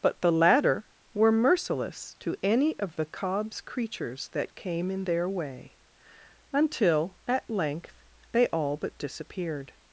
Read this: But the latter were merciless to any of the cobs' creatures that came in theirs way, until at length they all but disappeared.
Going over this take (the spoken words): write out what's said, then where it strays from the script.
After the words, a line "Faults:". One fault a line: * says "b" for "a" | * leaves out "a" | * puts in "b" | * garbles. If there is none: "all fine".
But the latter were merciless to any of the cobs' creatures that came in their way, until at length they all but disappeared.
Faults:
* says "their" for "theirs"